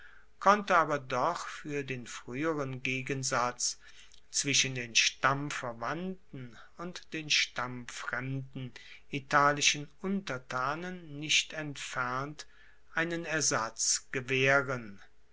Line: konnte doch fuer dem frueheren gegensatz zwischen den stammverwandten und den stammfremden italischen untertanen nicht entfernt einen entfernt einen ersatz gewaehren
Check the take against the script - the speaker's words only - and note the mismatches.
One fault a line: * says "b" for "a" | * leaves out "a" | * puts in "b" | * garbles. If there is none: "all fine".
* puts in "aber"
* says "den" for "dem"
* leaves out "entfernt einen"